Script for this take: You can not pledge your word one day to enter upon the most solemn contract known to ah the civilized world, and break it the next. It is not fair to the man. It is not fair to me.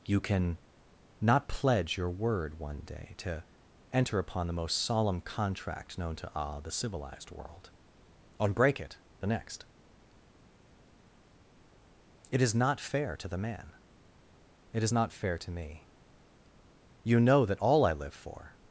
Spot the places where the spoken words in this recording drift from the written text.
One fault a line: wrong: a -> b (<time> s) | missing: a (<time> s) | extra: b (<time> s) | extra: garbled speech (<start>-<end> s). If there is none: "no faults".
extra: You know that all I live for (17.0 s)